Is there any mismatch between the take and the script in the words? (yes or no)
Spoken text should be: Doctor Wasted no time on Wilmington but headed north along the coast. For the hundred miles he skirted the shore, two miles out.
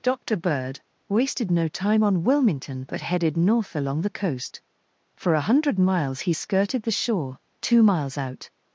yes